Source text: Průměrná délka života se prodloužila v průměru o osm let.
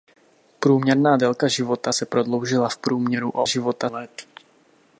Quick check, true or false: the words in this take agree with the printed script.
false